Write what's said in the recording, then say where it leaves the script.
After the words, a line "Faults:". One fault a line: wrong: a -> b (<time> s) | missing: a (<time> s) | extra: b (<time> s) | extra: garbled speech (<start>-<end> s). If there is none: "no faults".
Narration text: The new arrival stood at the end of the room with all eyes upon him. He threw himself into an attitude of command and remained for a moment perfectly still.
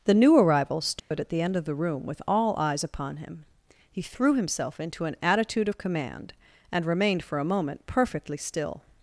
The new arrival stood at the end of the room with all eyes upon him. He threw himself into an attitude of command and remained for a moment perfectly still.
Faults:
no faults